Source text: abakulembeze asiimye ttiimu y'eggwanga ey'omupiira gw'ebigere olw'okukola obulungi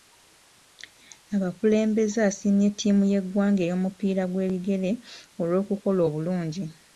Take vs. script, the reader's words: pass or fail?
pass